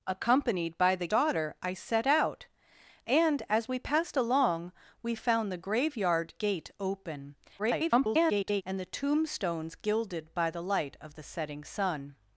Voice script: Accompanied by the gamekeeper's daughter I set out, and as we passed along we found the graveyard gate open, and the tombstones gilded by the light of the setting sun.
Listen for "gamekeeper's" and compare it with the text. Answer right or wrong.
wrong